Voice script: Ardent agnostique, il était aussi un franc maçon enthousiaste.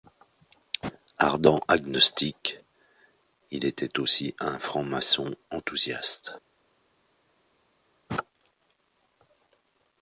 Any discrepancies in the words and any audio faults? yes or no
no